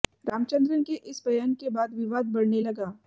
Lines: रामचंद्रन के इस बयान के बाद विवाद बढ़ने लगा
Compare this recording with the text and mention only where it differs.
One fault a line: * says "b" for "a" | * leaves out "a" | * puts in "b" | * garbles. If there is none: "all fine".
all fine